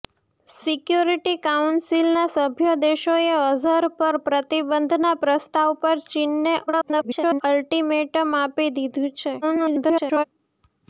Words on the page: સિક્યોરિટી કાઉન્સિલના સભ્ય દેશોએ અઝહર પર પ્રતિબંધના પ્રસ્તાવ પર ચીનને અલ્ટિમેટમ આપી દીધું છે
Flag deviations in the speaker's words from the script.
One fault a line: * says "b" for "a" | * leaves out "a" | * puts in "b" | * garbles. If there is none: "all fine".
* garbles
* garbles